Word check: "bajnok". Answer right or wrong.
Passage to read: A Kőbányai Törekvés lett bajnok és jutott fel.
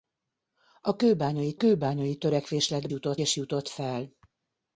wrong